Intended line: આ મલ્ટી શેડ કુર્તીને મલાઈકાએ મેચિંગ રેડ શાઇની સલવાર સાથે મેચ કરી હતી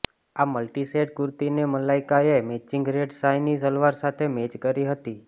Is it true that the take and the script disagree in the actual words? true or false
false